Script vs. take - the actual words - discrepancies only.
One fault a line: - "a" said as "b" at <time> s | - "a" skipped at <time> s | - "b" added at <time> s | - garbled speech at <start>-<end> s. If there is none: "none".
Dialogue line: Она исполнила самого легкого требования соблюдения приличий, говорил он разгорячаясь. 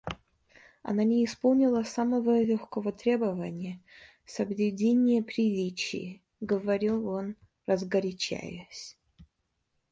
- "не" added at 1.0 s